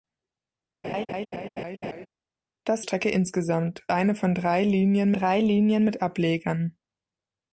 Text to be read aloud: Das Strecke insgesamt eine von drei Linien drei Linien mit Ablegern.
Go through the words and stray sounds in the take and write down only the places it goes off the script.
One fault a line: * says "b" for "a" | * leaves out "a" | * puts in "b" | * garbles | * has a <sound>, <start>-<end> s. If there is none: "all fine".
* has a laugh, 0.8-2.1 s